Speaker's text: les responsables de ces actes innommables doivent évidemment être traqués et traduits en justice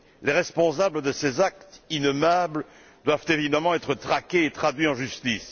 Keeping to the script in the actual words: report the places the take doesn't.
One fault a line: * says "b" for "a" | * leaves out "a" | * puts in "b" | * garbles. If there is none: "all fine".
all fine